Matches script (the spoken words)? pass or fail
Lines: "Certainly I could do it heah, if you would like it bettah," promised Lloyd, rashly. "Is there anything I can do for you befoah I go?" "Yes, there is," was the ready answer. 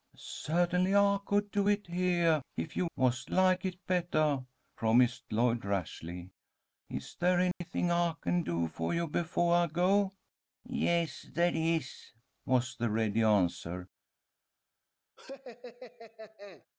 fail